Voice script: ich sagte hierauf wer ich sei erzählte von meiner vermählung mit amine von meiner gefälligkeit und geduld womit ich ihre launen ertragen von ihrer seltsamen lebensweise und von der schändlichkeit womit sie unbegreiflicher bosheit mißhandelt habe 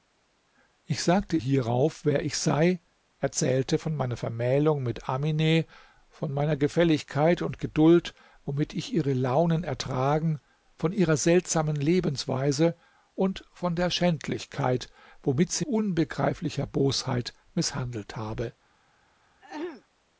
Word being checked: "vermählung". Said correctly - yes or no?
yes